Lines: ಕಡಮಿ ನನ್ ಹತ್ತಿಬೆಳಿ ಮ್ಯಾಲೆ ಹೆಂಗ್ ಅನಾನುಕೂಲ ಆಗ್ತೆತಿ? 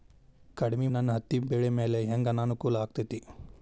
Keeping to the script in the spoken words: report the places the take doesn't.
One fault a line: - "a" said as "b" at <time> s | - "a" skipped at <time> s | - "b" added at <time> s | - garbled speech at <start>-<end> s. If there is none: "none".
none